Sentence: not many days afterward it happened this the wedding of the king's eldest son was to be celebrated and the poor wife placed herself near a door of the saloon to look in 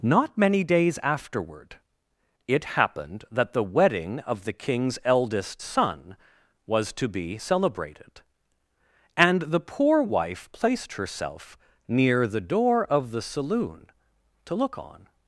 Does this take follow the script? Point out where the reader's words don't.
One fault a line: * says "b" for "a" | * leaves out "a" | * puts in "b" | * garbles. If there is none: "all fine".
* says "that" for "this"
* says "the" for "a"
* says "on" for "in"